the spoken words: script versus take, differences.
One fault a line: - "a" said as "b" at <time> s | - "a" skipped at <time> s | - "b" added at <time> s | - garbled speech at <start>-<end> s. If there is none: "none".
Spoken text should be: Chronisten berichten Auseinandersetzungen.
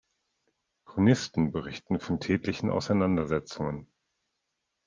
- "von tätlichen" added at 2.0 s